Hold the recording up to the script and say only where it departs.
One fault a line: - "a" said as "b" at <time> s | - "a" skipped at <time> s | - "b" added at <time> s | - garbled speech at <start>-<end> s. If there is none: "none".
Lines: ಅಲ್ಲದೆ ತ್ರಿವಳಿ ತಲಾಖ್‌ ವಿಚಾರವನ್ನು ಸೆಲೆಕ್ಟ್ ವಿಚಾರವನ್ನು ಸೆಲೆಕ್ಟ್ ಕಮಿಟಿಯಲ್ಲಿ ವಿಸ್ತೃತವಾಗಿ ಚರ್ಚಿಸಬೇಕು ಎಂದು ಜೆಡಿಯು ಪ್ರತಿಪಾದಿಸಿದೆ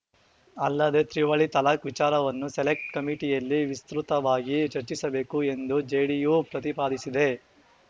- "ವಿಚಾರವನ್ನು ಸೆಲೆಕ್ಟ್" skipped at 2.9 s